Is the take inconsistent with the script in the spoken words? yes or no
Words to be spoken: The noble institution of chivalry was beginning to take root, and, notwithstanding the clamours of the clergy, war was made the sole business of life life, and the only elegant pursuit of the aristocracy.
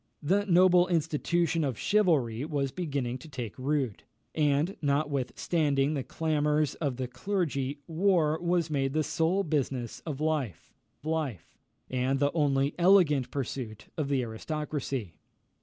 no